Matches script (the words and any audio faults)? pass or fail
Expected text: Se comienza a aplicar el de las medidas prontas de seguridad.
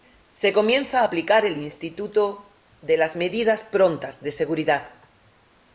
fail